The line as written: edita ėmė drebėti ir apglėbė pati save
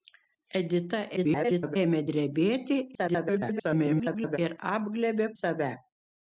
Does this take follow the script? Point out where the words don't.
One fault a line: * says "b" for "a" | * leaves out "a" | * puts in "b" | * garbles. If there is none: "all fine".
* garbles
* garbles
* leaves out "pati"